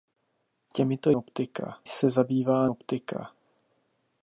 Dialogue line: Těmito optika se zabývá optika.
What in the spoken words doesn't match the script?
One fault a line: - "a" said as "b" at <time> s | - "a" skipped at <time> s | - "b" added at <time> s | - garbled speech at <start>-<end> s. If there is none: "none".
none